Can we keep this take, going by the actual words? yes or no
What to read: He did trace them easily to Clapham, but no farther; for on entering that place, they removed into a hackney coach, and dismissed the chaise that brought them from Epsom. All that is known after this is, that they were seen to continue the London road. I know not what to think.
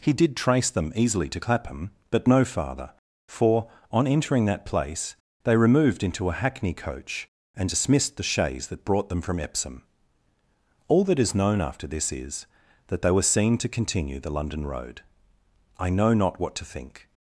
yes